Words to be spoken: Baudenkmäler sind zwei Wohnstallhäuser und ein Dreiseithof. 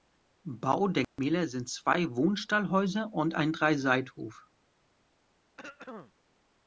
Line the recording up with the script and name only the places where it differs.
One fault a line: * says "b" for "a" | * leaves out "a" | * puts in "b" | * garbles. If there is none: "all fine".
all fine